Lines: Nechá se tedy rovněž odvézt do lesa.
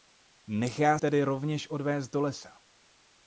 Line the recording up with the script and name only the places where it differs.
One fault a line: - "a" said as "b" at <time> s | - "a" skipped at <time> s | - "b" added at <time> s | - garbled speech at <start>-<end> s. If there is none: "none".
- "se" skipped at 1.0 s